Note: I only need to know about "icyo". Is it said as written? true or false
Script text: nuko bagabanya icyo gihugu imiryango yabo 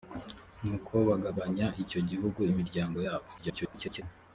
true